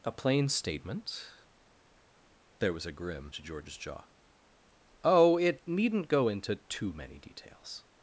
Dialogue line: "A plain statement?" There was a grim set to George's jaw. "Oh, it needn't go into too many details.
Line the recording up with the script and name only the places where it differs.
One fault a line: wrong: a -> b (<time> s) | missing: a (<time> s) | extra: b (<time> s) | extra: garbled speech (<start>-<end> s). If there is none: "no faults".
missing: set (3.3 s)